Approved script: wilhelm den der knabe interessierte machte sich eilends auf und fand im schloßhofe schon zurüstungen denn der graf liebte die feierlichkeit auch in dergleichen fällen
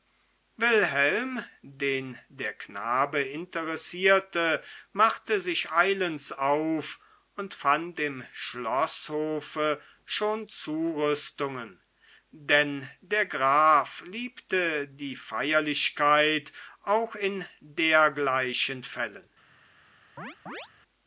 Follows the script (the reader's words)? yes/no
yes